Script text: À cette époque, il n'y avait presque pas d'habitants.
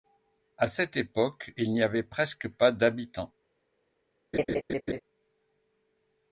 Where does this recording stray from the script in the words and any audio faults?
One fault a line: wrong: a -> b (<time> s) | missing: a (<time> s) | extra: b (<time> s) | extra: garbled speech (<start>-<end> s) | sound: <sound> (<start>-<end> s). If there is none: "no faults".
sound: laugh (4.3-5.0 s)